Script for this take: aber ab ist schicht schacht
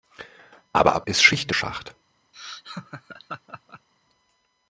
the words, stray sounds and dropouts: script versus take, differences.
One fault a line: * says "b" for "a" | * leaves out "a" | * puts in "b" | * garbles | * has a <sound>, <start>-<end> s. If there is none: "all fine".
* has a laugh, 2.3-3.9 s